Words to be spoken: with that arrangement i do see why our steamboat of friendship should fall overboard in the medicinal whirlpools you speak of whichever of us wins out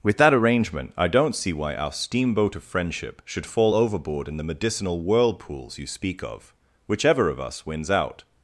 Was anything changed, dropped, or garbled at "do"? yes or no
yes